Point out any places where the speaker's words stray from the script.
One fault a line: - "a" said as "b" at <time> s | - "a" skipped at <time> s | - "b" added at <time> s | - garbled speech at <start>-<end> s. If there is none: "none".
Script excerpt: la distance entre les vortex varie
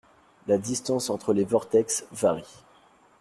none